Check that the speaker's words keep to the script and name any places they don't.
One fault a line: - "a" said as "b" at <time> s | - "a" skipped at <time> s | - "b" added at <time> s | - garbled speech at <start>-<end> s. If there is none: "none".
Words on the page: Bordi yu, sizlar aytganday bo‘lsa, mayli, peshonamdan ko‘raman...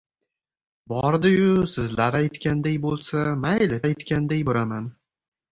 - "peshonamdan" said as "aytganday" at 3.9 s